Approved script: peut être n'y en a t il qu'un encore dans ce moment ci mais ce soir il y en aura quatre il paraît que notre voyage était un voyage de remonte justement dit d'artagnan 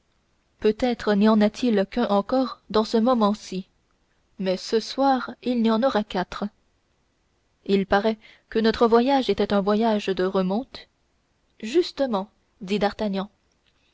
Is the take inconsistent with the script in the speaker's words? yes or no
no